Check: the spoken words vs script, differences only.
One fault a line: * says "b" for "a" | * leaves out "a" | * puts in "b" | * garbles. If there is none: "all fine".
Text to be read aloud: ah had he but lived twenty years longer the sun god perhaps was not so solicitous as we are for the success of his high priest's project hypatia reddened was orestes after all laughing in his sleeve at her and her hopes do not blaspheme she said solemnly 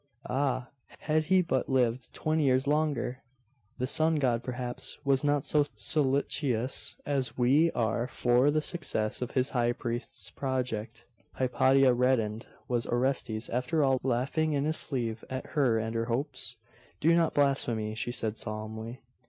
all fine